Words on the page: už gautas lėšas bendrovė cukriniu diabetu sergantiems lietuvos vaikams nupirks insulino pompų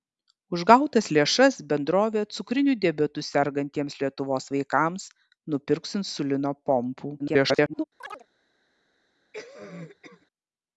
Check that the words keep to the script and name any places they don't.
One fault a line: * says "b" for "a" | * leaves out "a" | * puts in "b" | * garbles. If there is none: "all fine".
* garbles